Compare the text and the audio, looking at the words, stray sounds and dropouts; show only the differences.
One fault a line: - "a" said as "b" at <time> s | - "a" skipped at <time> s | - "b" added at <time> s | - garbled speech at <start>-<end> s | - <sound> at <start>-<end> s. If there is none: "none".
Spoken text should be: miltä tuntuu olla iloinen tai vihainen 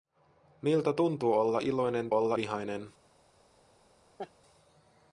- "tai" said as "olla" at 2.1 s
- laugh at 4.2-4.3 s